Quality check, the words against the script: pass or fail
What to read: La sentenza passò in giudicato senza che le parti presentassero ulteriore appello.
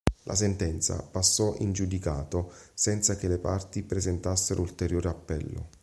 pass